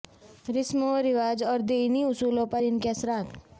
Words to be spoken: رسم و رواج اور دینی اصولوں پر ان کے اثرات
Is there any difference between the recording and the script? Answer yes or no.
no